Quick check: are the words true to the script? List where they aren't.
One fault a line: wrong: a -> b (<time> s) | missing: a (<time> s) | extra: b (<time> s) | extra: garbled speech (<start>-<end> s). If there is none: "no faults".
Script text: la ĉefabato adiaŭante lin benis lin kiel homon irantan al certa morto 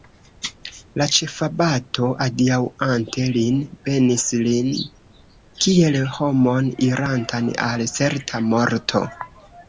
no faults